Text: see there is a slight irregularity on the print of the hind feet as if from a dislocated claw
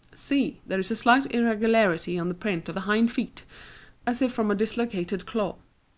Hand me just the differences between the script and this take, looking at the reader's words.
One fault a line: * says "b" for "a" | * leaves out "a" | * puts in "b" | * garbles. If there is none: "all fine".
all fine